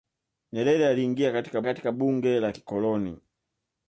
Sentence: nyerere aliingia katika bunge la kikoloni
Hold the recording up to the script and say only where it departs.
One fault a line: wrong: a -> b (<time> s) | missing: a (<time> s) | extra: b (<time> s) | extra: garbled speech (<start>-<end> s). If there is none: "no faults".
extra: katika (1.6 s)